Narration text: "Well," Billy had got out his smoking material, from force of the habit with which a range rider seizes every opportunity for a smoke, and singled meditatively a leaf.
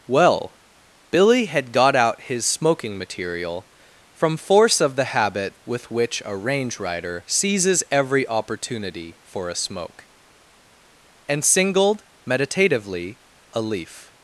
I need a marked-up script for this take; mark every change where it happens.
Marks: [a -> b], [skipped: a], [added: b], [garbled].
"Well," Billy had got out his smoking material, from force of the habit with which a range rider seizes every opportunity for a smoke, and singled meditatively a leaf.